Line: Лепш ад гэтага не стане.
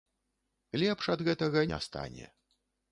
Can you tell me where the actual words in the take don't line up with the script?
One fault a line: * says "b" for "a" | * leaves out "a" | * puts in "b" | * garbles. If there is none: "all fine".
all fine